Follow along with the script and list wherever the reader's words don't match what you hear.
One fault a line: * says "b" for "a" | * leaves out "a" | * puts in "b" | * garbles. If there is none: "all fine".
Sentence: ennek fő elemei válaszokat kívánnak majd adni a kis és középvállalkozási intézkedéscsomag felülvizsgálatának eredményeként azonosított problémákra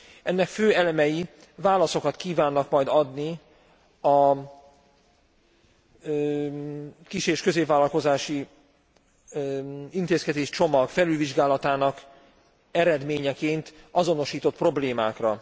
all fine